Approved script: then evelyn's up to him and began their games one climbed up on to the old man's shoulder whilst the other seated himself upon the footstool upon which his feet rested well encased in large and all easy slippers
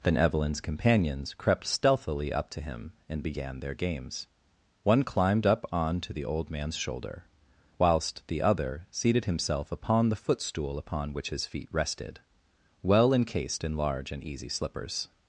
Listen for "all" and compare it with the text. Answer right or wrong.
wrong